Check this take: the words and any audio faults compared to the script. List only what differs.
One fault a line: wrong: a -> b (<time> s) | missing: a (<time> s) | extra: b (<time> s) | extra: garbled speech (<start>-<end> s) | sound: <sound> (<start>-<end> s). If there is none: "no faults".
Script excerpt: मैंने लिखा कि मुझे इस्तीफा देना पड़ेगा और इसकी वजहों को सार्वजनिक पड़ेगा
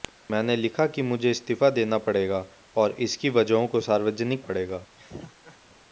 sound: laugh (5.0-5.6 s)